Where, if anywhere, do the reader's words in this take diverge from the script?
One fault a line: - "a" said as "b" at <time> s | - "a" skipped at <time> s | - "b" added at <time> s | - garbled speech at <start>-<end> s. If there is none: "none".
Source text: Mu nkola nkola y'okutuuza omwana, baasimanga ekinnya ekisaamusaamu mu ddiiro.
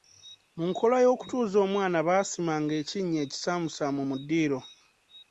- "nkola" skipped at 1.0 s